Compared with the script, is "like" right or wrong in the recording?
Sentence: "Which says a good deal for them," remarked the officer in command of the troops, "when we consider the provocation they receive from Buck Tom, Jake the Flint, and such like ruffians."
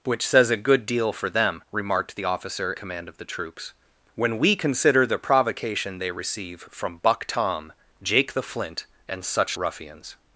wrong